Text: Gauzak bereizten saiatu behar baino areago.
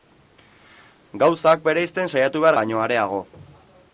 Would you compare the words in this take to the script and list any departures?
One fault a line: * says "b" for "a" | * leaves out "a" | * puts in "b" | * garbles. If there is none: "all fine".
all fine